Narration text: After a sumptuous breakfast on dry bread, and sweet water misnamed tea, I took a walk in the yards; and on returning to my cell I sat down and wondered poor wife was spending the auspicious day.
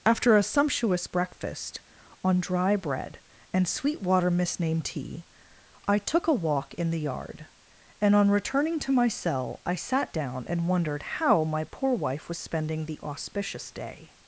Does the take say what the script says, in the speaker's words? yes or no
no